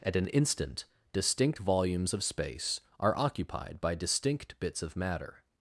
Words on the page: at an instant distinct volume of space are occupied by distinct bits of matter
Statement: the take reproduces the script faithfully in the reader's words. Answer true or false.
false